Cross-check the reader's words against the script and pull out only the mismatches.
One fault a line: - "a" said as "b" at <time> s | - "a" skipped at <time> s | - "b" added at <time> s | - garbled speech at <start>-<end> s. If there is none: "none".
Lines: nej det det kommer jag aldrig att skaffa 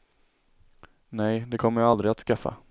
- "det" skipped at 1.6 s